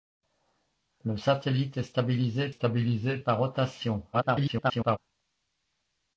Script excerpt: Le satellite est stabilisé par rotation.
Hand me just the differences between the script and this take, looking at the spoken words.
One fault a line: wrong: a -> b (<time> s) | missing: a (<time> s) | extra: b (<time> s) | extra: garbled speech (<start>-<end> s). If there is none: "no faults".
extra: stabilisé (2.5 s)
extra: garbled speech (4.1-5.0 s)